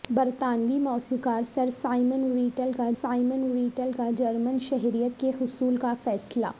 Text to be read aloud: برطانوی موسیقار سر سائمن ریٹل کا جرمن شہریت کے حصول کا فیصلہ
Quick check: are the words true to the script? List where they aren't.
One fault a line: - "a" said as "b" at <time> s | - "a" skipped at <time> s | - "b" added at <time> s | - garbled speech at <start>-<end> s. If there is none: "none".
- "سائمن ریٹل کا" added at 3.0 s